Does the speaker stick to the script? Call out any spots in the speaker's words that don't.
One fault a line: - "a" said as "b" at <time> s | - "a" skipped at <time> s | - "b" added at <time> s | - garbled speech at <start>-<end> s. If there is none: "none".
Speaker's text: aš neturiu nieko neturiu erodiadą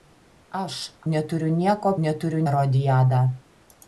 none